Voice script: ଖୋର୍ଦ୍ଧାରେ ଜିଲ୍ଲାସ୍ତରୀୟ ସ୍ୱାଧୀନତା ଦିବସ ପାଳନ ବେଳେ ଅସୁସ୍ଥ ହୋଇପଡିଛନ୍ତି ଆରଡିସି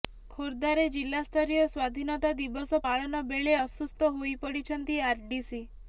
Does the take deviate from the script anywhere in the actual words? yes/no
no